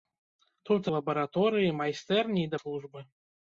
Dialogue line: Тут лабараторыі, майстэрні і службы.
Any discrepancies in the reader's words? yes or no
no